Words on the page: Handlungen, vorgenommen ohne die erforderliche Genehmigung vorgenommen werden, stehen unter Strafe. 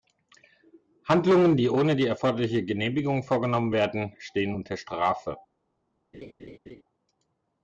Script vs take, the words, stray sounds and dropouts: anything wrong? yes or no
yes